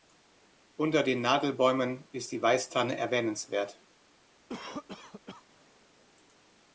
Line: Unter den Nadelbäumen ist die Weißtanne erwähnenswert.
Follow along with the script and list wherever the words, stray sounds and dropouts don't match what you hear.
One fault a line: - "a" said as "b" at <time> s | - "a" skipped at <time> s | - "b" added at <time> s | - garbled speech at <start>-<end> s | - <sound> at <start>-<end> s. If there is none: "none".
- cough at 4.5-5.4 s